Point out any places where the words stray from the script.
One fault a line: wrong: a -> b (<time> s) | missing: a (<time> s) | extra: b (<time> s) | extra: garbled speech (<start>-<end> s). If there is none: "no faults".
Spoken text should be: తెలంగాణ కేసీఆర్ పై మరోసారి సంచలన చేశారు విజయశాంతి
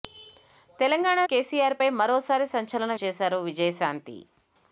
no faults